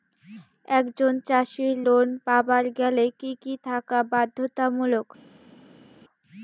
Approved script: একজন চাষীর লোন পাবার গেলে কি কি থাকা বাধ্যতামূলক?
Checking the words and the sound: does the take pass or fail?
pass